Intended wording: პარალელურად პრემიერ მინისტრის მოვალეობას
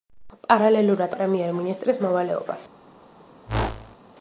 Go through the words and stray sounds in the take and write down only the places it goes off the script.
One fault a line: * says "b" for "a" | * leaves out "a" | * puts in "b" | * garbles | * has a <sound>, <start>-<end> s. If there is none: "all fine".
* has a whoosh, 3.5-4.0 s